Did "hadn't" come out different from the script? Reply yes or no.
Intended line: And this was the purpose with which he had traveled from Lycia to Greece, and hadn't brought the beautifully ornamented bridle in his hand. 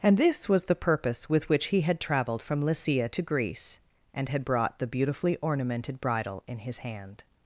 yes